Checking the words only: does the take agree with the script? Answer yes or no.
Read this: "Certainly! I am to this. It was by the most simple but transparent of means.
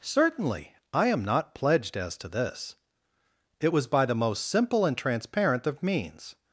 no